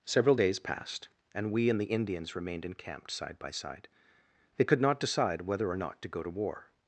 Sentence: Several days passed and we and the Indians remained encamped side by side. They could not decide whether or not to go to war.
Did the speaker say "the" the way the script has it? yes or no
yes